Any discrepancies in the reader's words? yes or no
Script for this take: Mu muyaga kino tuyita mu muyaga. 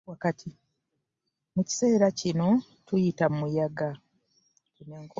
yes